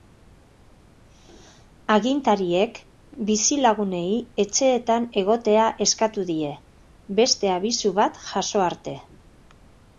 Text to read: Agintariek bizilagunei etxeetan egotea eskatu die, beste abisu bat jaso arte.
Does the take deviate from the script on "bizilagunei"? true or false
false